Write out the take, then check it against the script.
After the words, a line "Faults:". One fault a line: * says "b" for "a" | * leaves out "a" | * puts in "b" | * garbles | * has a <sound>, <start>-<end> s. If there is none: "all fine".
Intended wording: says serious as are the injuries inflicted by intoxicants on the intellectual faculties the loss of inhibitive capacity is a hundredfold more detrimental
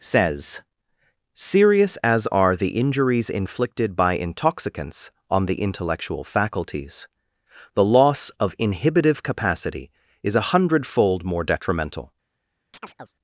says serious as are the injuries inflicted by intoxicants on the intellectual faculties the loss of inhibitive capacity is a hundredfold more detrimental
Faults:
* has a chirp, 12.7-13.1 s